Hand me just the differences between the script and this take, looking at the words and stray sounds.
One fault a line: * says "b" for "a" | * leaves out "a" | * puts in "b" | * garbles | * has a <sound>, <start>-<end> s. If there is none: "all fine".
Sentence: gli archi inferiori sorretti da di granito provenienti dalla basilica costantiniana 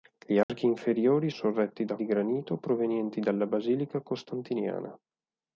* has a dropout, 0.4-0.5 s